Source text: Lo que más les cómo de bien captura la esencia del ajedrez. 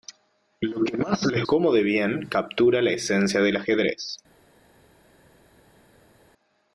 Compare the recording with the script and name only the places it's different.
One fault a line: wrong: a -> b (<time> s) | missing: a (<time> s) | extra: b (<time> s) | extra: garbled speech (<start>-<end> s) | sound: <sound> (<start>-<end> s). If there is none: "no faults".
no faults